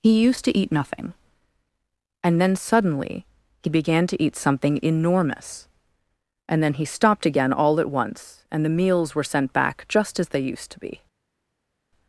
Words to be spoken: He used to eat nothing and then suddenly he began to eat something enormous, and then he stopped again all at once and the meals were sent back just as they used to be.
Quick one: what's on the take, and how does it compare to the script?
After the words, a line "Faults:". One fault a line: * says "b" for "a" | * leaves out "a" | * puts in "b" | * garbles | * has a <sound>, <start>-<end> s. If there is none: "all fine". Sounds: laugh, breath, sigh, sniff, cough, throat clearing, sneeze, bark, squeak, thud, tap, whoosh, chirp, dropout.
He used to eat nothing and then suddenly he began to eat something enormous, and then he stopped again all at once and the meals were sent back just as they used to be.
Faults:
all fine